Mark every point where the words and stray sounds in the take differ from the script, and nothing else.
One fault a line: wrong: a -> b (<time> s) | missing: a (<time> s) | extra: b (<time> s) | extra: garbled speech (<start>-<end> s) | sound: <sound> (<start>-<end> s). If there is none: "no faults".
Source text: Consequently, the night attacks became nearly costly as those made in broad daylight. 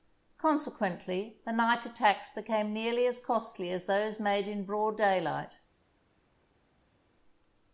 extra: as (3.0 s)